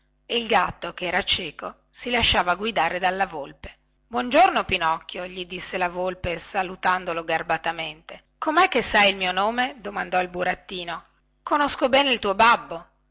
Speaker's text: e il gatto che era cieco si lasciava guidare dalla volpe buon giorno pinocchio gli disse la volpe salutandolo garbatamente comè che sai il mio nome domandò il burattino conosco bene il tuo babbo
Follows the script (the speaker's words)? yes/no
yes